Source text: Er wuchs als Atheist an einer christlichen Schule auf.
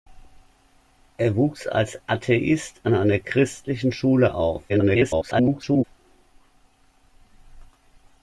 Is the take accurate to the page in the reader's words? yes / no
no